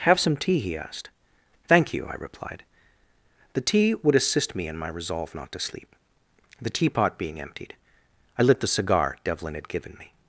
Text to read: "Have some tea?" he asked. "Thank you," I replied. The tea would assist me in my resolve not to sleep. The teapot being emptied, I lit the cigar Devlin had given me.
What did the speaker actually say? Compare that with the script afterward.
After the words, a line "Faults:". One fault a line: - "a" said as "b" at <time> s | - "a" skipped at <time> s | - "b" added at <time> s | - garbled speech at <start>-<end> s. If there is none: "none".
"Have some tea?" he asked. "Thank you," I replied. The tea would assist me in my resolve not to sleep. The teapot being emptied, I lit the cigar Devlin had given me.
Faults:
none